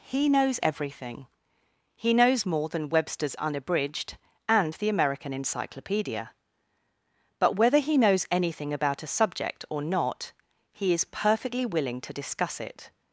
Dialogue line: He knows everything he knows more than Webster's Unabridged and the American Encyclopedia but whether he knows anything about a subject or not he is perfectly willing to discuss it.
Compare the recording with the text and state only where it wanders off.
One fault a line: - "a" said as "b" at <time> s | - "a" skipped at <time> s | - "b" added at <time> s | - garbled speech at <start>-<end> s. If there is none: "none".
none